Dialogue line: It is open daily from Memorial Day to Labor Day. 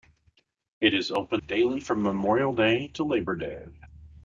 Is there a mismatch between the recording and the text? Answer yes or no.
no